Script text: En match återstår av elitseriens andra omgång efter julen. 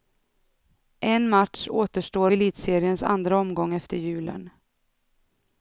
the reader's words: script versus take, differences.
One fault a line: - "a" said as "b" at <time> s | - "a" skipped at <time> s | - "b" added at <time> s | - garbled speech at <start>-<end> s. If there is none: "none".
- "av" skipped at 2.3 s